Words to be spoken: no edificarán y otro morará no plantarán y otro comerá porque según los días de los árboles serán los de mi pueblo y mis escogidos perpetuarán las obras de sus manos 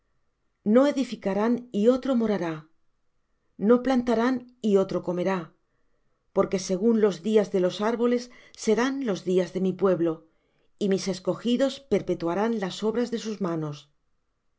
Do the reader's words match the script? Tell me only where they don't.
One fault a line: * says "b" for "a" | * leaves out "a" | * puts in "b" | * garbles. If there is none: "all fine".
* puts in "días"